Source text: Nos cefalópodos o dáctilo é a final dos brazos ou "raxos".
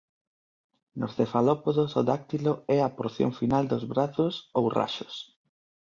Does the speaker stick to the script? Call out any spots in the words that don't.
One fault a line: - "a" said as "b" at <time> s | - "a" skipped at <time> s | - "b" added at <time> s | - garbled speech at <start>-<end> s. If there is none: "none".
- "porción" added at 3.0 s